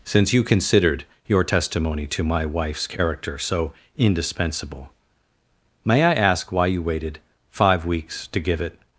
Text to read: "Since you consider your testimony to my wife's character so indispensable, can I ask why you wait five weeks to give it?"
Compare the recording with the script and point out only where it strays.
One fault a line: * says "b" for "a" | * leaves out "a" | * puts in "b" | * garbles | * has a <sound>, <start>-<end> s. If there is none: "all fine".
* says "considered" for "consider"
* says "may" for "can"
* says "waited" for "wait"